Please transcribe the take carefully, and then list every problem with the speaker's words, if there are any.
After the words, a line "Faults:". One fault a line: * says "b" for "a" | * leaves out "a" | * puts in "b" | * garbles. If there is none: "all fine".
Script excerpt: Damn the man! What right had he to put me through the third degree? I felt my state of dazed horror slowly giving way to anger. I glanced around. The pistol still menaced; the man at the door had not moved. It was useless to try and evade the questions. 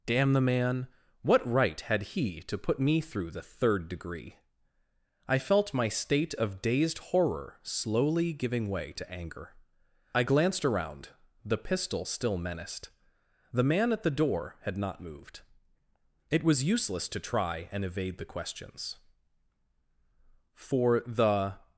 Damn the man! What right had he to put me through the third degree? I felt my state of dazed horror slowly giving way to anger. I glanced around. The pistol still menaced; the man at the door had not moved. It was useless to try and evade the questions. "For the
Faults:
* puts in "For the"